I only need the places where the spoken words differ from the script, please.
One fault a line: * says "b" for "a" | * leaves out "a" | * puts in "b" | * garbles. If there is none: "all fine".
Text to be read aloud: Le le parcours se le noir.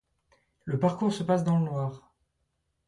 * leaves out "le"
* puts in "passe dans"